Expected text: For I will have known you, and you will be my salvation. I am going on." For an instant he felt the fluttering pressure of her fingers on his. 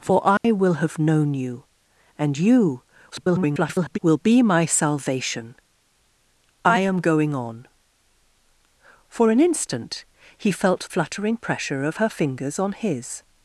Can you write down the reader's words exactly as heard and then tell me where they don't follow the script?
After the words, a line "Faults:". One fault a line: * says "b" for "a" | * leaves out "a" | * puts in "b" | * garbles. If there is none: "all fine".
For I will have known you, and you [garbled] will be my salvation. I am going on." For an instant he felt fluttering pressure of her fingers on his.
Faults:
* garbles
* leaves out "the"